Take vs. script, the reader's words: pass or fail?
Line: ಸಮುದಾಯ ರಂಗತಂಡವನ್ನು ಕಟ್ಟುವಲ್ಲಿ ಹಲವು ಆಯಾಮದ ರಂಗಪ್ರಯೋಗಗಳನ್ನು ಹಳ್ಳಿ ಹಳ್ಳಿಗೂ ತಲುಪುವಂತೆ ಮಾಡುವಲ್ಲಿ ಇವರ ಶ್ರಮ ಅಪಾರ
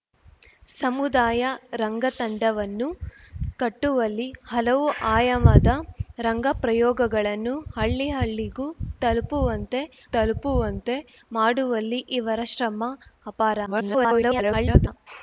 fail